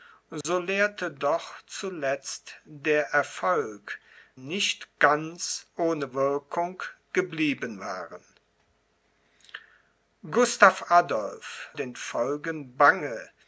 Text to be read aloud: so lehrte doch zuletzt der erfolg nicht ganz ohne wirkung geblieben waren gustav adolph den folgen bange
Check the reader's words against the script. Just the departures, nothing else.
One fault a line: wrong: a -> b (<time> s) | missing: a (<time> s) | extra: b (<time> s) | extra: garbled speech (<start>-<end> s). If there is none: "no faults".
no faults